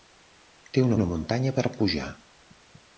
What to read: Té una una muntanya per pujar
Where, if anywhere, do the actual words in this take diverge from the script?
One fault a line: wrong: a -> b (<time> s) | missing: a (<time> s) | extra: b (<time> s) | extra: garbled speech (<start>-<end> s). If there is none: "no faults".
no faults